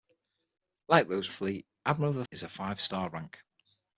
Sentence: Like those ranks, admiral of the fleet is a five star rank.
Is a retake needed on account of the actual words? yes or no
yes